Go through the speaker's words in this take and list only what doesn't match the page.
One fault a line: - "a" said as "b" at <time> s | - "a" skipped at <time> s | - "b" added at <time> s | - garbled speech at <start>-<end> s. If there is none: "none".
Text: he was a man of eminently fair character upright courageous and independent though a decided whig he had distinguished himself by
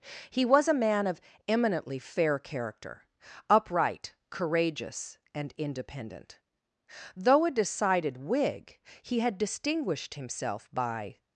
none